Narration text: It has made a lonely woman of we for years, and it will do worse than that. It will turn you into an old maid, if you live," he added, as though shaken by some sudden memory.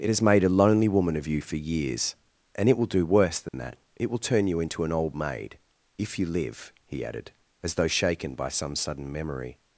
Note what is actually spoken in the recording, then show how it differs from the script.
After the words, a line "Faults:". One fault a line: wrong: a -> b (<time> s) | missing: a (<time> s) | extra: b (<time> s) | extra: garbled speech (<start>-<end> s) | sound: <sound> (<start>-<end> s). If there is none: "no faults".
It has made a lonely woman of you for years, and it will do worse than that. It will turn you into an old maid, if you live," he added, as though shaken by some sudden memory.
Faults:
wrong: we -> you (1.3 s)
sound: dropout (3.5-3.5 s)